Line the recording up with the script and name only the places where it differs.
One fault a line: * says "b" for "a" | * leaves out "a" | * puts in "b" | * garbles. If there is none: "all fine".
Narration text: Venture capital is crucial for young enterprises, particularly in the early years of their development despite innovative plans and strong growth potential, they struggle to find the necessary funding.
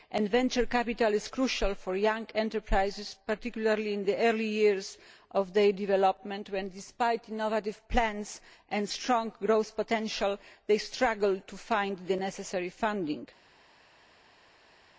* puts in "when"